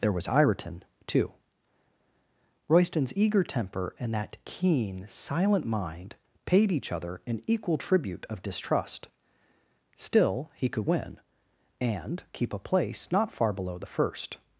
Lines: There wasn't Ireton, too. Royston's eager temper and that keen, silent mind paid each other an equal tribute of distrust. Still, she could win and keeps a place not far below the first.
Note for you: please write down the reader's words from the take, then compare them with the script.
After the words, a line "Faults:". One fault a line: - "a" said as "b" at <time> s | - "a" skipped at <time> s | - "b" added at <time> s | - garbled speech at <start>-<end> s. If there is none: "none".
There was Ireton, too. Royston's eager temper and that keen, silent mind paid each other an equal tribute of distrust. Still, he could win and keep a place not far below the first.
Faults:
- "wasn't" said as "was" at 0.1 s
- "she" said as "he" at 10.5 s
- "keeps" said as "keep" at 12.3 s